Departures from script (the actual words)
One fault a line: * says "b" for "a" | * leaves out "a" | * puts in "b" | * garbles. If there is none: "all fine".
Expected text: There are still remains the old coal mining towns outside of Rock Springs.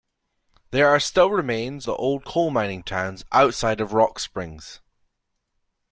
all fine